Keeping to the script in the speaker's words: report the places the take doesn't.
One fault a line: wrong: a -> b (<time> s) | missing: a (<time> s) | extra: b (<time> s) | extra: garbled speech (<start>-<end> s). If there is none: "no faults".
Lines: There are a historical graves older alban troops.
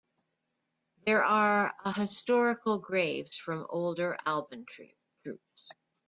extra: from (3.3 s)